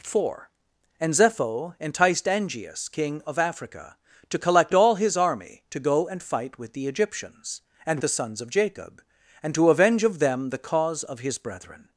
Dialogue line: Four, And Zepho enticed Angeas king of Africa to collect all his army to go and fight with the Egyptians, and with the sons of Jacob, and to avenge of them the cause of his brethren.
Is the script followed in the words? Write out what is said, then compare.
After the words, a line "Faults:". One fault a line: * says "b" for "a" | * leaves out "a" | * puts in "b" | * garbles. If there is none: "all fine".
Four, And Zepho enticed Angeas king of Africa to collect all his army to go and fight with the Egyptians, and the sons of Jacob, and to avenge of them the cause of his brethren.
Faults:
* leaves out "with"